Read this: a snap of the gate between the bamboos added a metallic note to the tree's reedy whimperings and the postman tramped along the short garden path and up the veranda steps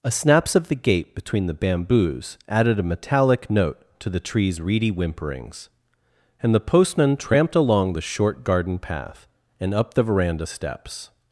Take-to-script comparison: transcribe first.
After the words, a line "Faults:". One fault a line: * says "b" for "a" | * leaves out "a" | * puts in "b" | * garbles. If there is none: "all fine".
a snaps of the gate between the bamboos added a metallic note to the tree's reedy whimperings and the postman tramped along the short garden path and up the veranda steps
Faults:
* says "snaps" for "snap"